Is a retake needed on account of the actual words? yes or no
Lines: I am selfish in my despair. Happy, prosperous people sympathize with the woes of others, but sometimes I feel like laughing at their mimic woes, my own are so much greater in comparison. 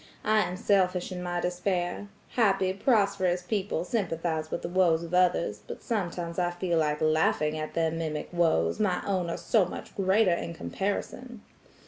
no